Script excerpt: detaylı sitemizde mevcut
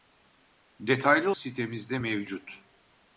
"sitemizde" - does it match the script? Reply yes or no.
yes